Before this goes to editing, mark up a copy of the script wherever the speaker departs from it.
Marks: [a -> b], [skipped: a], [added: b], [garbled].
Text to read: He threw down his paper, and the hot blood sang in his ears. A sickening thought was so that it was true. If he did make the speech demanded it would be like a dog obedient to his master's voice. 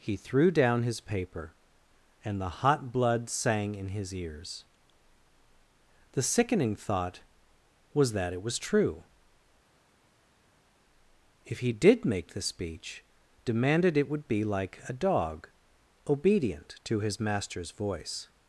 He threw down his paper, and the hot blood sang in his ears. [A -> The] sickening thought was [skipped: so] that it was true. If he did make the speech demanded it would be like a dog obedient to his master's voice.